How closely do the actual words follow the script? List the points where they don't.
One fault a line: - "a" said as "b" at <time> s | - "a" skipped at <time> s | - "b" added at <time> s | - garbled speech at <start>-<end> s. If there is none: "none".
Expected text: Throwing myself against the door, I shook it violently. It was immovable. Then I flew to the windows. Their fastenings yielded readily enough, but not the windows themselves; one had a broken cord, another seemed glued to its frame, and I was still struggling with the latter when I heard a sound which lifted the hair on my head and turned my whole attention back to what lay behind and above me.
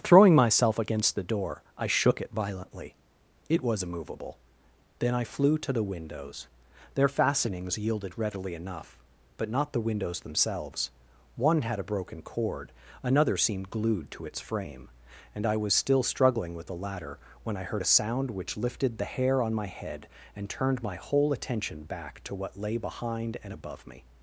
none